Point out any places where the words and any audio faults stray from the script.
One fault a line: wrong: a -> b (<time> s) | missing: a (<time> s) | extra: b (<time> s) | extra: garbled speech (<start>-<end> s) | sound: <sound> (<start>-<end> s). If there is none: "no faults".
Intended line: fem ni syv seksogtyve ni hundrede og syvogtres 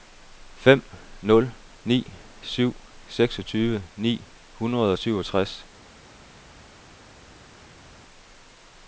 extra: nul (1.2 s)